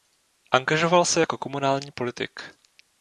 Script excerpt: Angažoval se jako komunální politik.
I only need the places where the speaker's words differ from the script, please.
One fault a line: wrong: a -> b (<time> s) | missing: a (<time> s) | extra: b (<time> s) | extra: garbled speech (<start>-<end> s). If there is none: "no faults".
no faults